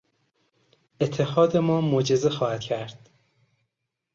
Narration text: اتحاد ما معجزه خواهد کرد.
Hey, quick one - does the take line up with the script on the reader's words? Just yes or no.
yes